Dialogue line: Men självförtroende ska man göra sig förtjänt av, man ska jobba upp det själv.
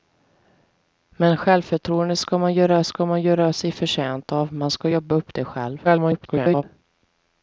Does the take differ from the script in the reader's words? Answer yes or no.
yes